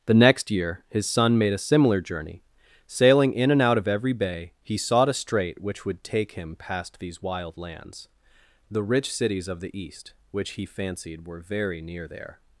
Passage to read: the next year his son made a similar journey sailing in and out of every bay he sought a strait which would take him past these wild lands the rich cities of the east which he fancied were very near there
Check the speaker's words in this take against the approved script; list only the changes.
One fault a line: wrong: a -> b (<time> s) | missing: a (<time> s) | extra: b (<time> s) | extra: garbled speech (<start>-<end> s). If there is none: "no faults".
no faults